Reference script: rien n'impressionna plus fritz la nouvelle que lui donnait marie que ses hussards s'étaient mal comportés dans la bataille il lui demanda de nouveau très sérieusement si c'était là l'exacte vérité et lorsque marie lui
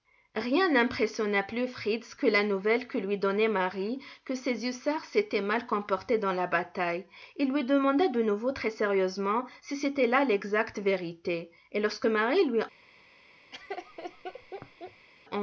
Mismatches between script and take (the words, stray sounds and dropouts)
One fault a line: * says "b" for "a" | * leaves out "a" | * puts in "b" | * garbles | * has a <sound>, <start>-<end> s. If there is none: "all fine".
* puts in "que"
* has a laugh, 13.5-15.1 s